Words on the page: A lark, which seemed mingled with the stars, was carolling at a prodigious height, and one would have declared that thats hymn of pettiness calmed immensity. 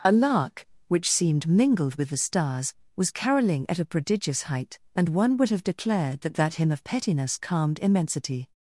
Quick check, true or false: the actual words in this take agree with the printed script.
false